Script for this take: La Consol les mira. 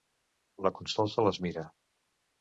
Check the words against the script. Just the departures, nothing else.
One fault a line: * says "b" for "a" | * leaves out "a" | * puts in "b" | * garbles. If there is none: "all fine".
* puts in "se"